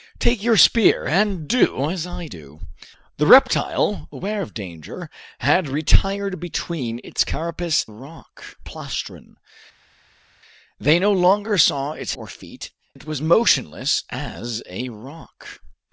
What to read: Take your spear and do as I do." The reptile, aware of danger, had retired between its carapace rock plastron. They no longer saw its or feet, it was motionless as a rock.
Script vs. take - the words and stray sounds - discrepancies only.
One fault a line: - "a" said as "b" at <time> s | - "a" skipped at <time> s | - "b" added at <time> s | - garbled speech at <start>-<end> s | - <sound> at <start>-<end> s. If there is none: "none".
none